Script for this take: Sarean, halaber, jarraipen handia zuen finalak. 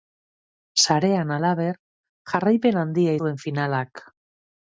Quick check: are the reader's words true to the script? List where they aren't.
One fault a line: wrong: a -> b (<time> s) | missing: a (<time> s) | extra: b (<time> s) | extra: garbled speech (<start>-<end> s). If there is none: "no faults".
no faults